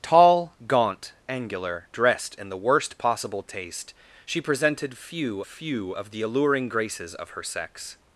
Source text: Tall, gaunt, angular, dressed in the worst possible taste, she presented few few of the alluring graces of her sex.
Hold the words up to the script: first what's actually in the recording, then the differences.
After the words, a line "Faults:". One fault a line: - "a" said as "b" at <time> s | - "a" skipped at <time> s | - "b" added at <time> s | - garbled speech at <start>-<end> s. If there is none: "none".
Tall, gaunt, angular, dressed in the worst possible taste, she presented few few of the alluring graces of her sex.
Faults:
none